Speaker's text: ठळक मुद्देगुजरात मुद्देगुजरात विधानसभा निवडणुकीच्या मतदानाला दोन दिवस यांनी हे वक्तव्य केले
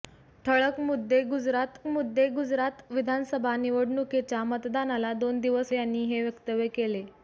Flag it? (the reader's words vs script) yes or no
no